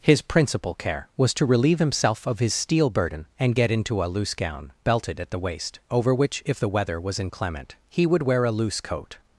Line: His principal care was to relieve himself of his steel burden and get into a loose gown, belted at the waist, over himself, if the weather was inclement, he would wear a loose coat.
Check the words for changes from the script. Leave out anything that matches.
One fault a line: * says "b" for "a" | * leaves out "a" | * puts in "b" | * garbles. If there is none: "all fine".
* says "which" for "himself"